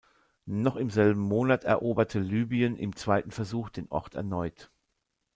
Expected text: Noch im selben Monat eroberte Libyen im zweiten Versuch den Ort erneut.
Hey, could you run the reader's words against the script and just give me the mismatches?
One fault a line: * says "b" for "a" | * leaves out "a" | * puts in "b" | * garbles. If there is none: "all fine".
all fine